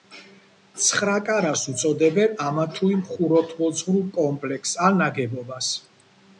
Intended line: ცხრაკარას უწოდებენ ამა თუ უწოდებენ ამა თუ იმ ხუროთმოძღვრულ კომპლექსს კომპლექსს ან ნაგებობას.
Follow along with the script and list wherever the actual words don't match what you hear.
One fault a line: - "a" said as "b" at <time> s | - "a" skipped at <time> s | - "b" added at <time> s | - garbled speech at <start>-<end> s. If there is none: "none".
- "უწოდებენ ამა თუ" skipped at 2.9 s
- "კომპლექსს" skipped at 4.8 s